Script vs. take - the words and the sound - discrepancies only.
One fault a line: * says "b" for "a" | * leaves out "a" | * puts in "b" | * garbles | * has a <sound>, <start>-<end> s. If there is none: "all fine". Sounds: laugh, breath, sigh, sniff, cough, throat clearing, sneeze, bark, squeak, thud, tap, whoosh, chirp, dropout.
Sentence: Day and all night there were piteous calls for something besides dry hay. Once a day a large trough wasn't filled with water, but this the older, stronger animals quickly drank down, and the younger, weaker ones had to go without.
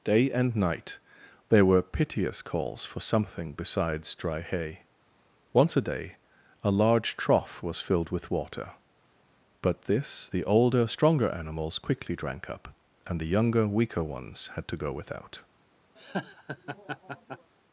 * leaves out "all"
* says "was" for "wasn't"
* says "up" for "down"
* has a laugh, 16.0-17.5 s